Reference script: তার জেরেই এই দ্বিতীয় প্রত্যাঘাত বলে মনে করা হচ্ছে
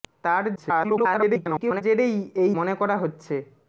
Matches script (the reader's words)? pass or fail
fail